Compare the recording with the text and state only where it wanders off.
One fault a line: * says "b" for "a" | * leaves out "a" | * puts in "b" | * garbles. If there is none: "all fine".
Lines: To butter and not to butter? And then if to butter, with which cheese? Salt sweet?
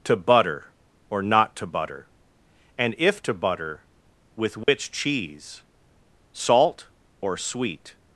* says "or" for "and"
* leaves out "then"
* puts in "or"